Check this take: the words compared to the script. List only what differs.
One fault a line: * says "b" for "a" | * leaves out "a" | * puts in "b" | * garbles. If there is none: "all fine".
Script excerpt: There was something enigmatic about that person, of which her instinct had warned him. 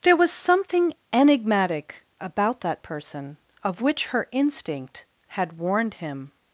all fine